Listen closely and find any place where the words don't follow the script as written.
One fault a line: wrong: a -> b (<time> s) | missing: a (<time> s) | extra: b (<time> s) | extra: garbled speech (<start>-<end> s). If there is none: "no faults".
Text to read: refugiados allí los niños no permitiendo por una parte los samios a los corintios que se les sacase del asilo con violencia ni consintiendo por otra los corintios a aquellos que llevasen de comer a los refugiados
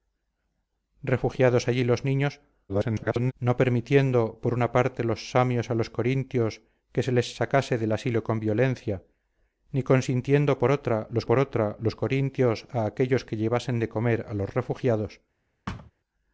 extra: garbled speech (2.7-3.3 s)
extra: por otra los (11.3 s)